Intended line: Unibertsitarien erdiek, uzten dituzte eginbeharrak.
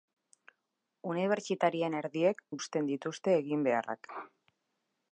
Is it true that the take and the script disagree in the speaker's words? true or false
false